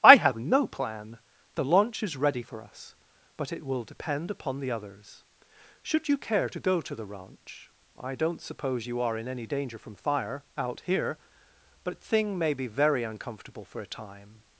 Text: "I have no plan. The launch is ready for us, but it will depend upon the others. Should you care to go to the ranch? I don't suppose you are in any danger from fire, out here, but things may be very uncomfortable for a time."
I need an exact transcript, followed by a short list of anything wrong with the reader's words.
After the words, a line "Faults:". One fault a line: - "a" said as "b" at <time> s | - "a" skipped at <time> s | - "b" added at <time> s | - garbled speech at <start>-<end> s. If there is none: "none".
"I have no plan. The launch is ready for us, but it will depend upon the others. Should you care to go to the ranch? I don't suppose you are in any danger from fire, out here, but thing may be very uncomfortable for a time."
Faults:
- "things" said as "thing" at 12.0 s